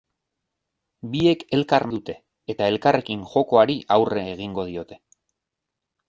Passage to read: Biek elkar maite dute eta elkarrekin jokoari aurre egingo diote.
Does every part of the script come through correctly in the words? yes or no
no